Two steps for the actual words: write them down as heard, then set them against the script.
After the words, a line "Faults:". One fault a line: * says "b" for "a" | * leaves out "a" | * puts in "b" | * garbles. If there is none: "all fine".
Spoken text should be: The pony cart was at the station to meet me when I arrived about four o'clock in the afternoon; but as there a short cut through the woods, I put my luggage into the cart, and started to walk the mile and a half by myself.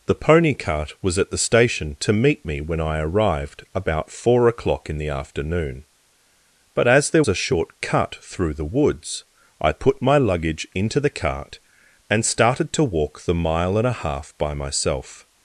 The pony cart was at the station to meet me when I arrived about four o'clock in the afternoon; but as there a short cut through the woods, I put my luggage into the cart, and started to walk the mile and a half by myself.
Faults:
all fine